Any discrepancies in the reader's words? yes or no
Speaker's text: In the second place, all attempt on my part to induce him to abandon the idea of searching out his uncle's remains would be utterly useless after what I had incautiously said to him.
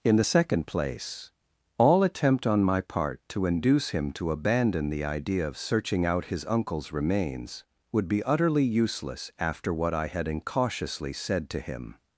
no